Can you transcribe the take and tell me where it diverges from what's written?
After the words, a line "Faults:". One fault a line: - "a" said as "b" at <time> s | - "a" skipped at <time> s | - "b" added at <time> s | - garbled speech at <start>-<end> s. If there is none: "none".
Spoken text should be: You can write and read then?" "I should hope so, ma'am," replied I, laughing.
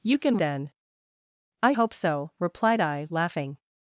You can then?" "I hope so," replied I, laughing.
Faults:
- "write and read" skipped at 0.4 s
- "should" skipped at 1.7 s
- "ma'am" skipped at 2.3 s